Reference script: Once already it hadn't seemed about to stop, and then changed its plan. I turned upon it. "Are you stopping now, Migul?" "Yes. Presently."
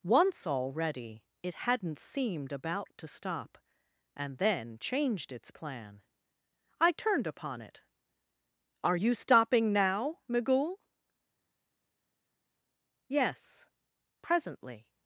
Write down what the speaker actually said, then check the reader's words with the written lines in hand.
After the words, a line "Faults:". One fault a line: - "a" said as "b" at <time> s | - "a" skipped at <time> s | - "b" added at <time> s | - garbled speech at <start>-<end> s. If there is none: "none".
Once already it hadn't seemed about to stop, and then changed its plan. I turned upon it. "Are you stopping now, Migul?" "Yes. Presently."
Faults:
none